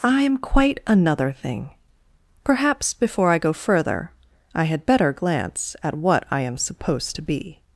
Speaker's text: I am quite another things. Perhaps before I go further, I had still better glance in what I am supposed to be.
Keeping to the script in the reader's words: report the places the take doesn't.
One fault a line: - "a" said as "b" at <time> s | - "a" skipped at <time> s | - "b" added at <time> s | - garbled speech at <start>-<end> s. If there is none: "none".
- "things" said as "thing" at 1.3 s
- "still" skipped at 4.9 s
- "in" said as "at" at 5.8 s